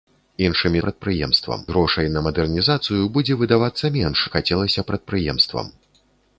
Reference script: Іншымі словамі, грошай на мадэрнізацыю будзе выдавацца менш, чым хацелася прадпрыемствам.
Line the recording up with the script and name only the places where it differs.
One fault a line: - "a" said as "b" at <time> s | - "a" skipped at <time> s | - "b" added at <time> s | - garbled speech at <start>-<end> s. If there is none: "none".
- "словамі" said as "прадпрыемствам" at 0.8 s
- "чым" skipped at 4.2 s